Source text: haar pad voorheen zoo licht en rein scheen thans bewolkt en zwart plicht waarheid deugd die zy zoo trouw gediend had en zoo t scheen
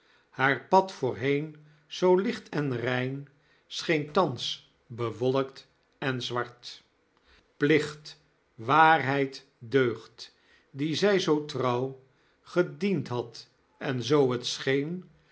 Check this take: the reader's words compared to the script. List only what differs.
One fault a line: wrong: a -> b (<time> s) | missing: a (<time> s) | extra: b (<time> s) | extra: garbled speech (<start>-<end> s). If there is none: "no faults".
no faults